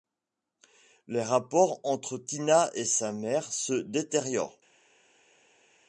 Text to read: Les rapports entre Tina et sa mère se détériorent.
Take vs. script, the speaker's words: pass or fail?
pass